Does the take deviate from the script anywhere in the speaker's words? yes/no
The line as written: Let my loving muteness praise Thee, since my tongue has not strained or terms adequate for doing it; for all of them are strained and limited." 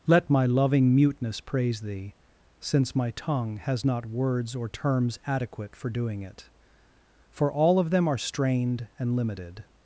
yes